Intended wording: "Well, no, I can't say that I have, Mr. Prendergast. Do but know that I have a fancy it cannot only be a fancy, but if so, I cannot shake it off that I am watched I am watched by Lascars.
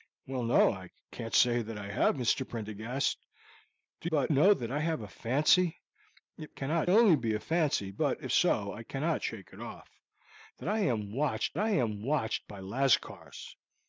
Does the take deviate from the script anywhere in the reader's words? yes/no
no